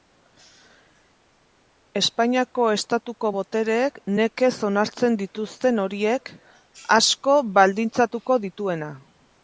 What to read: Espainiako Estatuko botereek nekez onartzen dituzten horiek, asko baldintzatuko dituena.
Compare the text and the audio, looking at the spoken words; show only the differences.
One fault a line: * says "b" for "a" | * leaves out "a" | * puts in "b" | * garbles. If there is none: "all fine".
all fine